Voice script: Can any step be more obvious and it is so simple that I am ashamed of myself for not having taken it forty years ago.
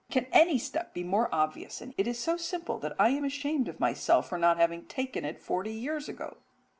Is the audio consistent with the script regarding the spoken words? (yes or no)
yes